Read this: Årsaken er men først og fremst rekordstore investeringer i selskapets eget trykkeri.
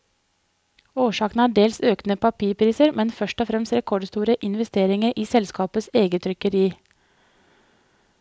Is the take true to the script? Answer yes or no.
no